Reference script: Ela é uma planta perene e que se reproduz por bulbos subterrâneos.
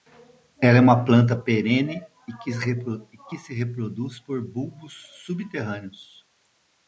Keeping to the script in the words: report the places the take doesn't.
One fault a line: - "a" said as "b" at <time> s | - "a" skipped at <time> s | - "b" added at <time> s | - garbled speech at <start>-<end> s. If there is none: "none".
none